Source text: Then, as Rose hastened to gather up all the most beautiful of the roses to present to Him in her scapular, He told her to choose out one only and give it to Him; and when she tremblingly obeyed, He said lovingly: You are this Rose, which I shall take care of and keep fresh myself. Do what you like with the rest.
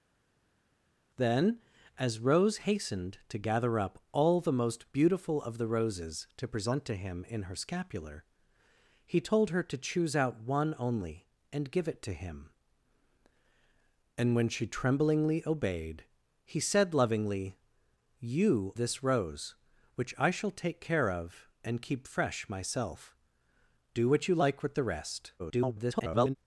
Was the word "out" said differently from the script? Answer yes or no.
no